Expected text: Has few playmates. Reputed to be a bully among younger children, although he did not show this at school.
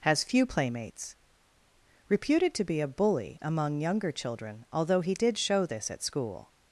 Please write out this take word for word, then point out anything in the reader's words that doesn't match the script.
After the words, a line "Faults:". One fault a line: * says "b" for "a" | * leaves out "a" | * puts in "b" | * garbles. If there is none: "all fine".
Has few playmates. Reputed to be a bully among younger children, although he did show this at school.
Faults:
* leaves out "not"